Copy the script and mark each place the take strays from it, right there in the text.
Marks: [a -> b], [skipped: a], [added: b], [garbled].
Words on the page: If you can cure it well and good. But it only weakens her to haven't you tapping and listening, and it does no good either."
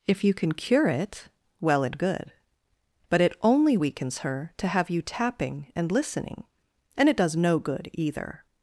If you can cure it well and good. But it only weakens her to [haven't -> have] you tapping and listening, and it does no good either."